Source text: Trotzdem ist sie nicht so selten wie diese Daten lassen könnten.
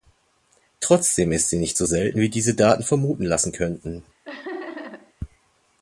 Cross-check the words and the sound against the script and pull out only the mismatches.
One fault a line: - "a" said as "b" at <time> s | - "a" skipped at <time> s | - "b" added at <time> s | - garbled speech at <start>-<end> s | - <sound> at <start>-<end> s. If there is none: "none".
- "vermuten" added at 2.8 s
- laugh at 4.2-5.1 s